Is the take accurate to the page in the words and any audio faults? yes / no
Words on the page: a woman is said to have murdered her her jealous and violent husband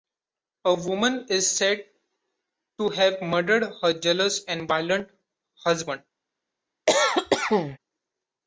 no